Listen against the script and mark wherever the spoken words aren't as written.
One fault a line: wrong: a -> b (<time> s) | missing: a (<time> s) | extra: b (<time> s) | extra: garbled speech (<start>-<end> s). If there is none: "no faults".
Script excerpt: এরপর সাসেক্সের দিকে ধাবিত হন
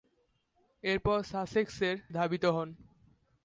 missing: দিকে (1.9 s)